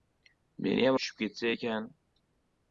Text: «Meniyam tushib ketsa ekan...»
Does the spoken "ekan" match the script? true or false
true